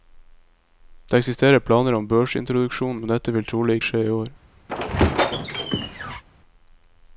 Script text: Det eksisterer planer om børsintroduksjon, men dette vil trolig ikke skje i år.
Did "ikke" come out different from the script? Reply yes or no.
yes